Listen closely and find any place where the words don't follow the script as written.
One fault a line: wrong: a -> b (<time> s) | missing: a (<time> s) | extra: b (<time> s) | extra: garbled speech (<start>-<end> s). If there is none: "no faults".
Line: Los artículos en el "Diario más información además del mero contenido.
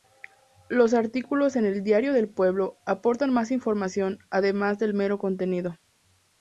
extra: del Pueblo aportan (2.1 s)